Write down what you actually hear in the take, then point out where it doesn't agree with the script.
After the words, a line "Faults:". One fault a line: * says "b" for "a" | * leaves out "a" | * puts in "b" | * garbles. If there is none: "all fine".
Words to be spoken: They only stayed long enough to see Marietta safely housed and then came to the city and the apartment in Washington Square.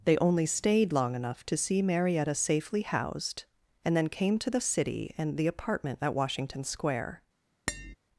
They only stayed long enough to see Marietta safely housed and then came to the city and the apartment at Washington Square.
Faults:
* says "at" for "in"